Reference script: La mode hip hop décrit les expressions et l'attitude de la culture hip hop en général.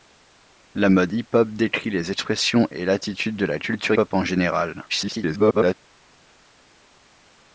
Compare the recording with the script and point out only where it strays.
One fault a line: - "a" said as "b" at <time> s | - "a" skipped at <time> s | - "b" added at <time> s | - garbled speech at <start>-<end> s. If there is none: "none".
- "hip" skipped at 3.9 s
- garbled speech at 4.9-5.7 s